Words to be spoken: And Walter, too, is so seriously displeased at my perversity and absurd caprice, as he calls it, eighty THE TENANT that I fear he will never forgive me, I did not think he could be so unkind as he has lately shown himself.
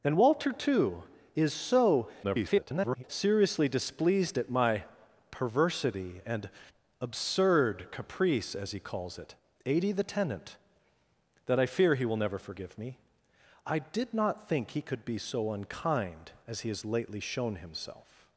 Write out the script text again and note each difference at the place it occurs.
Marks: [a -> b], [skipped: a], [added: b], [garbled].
And Walter, too, is so [garbled] seriously displeased at my perversity and absurd caprice, as he calls it, eighty THE TENANT that I fear he will never forgive me, I did not think he could be so unkind as he has lately shown himself.